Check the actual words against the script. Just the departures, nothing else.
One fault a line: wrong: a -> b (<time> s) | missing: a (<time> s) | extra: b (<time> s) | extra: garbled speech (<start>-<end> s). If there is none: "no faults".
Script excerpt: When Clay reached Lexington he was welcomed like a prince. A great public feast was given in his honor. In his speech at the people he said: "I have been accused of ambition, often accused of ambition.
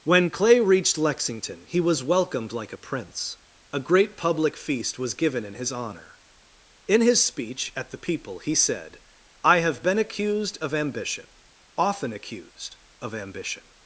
no faults